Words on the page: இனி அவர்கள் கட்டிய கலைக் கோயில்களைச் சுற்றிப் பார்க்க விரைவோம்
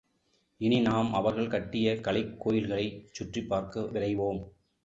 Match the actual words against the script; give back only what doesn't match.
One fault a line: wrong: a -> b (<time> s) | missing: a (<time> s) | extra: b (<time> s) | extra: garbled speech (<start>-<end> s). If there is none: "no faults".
extra: நாம் (0.8 s)